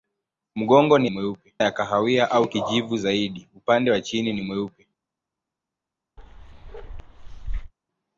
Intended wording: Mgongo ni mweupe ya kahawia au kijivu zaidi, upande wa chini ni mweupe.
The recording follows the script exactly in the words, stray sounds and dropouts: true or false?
false